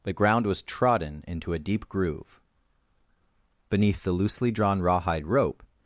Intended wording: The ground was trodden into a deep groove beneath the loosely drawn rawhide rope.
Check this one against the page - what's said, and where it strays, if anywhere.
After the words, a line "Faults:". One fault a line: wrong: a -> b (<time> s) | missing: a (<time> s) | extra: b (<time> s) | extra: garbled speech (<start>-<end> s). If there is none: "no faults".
The ground was trodden into a deep groove beneath the loosely drawn rawhide rope.
Faults:
no faults